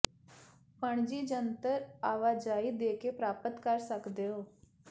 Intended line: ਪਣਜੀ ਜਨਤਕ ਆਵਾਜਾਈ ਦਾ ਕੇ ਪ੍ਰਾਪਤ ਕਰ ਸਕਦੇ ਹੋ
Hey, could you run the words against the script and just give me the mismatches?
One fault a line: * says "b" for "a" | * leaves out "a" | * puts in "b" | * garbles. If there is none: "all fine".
* says "ਦੇ" for "ਦਾ"